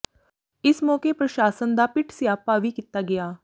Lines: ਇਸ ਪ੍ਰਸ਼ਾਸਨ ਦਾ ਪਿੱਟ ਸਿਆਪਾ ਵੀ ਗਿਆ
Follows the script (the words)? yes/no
no